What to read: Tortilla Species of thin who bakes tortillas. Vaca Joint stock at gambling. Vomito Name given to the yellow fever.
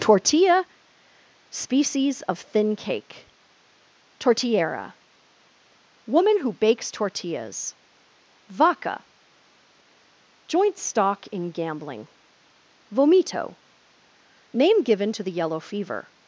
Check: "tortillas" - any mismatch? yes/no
no